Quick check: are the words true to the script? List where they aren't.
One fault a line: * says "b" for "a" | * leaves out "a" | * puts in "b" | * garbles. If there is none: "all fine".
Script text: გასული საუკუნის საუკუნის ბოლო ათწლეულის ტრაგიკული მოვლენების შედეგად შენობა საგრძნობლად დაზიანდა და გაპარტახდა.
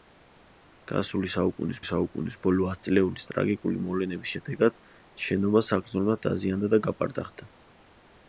all fine